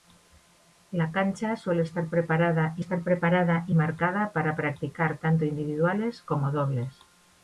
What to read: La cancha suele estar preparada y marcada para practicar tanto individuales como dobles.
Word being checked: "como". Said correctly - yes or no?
yes